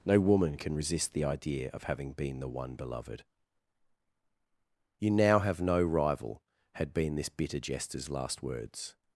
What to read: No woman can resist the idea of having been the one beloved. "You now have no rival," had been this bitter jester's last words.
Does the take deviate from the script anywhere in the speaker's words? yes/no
no